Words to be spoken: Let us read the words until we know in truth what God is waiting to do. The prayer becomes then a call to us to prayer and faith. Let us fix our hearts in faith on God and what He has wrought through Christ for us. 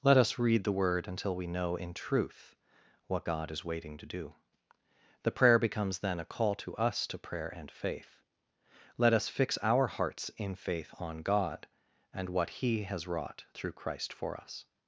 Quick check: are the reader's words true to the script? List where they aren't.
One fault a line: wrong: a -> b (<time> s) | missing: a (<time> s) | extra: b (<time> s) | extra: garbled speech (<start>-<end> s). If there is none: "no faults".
wrong: words -> word (0.7 s)